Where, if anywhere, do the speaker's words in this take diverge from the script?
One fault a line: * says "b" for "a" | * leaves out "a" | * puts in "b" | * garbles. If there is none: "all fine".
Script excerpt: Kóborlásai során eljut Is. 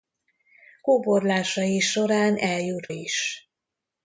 all fine